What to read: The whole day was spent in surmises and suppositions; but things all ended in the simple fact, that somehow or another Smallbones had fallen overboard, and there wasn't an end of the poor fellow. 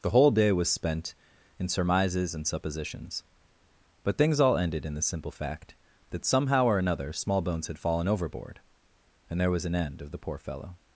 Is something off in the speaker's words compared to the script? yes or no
yes